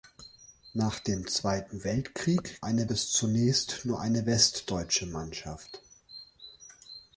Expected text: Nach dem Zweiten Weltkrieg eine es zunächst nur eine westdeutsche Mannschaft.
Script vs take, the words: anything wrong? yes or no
no